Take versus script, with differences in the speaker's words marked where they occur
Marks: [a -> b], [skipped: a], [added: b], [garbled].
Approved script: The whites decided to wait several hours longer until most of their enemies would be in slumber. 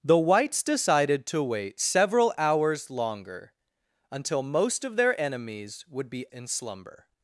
The whites decided to wait several hours longer until most of their enemies would be in slumber.